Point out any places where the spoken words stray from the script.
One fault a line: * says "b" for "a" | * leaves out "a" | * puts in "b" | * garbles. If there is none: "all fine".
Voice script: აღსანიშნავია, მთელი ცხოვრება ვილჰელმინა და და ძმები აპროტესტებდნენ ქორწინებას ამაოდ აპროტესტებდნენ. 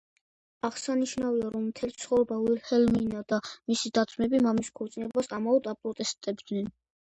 * puts in "რომ"
* puts in "მისი"
* says "მამის" for "აპროტესტებდნენ"